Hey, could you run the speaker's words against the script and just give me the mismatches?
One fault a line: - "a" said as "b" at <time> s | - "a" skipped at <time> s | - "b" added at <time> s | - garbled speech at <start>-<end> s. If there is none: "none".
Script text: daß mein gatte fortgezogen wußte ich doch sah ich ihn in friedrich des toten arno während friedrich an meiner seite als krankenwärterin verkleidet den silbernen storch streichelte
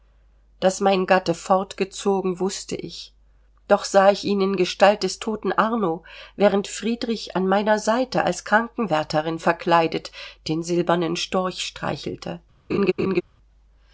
- "friedrich" said as "gestalt" at 4.5 s